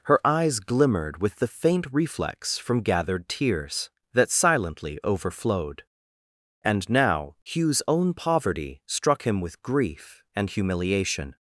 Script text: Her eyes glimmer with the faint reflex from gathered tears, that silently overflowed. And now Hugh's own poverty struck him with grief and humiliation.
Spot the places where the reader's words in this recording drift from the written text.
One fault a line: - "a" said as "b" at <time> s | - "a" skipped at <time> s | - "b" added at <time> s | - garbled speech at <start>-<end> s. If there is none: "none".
- "glimmer" said as "glimmered" at 0.6 s